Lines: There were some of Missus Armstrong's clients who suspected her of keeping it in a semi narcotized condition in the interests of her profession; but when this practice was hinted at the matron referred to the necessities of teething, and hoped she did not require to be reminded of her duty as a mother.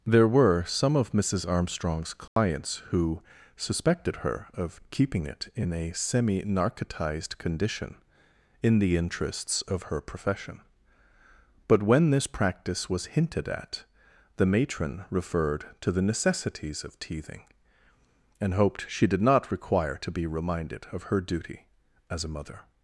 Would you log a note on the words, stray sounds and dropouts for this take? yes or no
yes